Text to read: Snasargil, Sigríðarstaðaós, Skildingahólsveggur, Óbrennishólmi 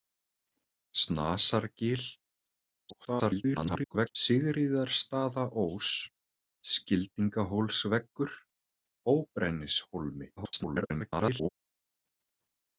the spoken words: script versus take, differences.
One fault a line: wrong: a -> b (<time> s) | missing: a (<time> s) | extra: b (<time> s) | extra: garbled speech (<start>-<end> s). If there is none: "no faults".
extra: garbled speech (2.9-4.2 s)
extra: garbled speech (10.4-11.5 s)